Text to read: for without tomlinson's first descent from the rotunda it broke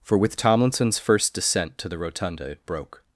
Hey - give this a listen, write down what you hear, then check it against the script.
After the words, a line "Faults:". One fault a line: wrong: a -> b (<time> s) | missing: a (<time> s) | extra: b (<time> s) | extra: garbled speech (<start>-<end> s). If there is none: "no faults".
for with tomlinson's first descent to the rotunda it broke
Faults:
wrong: without -> with (0.2 s)
wrong: from -> to (1.8 s)